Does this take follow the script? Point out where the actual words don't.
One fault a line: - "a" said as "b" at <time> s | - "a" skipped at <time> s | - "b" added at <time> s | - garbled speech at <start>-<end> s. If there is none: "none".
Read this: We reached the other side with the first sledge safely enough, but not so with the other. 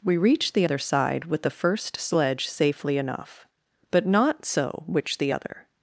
- "with" said as "which" at 4.9 s